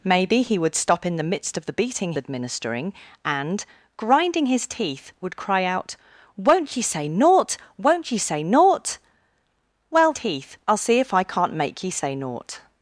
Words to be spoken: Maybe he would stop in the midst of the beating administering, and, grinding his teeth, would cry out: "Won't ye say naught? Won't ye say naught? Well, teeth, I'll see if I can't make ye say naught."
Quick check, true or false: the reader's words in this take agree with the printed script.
true